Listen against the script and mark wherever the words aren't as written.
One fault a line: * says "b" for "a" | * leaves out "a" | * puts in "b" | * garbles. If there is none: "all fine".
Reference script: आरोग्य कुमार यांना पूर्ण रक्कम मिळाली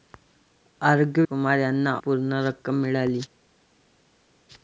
all fine